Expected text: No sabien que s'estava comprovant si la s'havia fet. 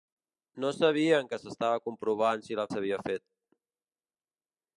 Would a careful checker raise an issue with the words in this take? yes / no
no